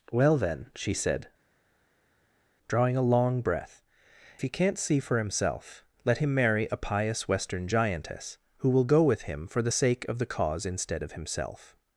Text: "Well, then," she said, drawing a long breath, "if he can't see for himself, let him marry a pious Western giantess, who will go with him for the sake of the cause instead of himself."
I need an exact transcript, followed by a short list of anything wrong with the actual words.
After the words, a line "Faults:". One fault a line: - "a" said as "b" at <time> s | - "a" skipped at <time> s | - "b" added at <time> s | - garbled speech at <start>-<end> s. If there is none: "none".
"Well, then," she said, drawing a long breath, "he can't see for himself, let him marry a pious Western giantess, who will go with him for the sake of the cause instead of himself."
Faults:
- "if" skipped at 3.8 s